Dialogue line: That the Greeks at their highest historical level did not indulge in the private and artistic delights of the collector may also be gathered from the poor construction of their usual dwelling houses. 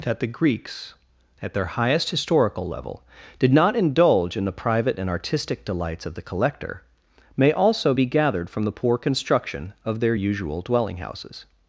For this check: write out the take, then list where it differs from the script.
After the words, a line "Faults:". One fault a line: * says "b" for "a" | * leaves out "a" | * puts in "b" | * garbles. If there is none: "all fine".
That the Greeks at their highest historical level did not indulge in the private and artistic delights of the collector may also be gathered from the poor construction of their usual dwelling houses.
Faults:
all fine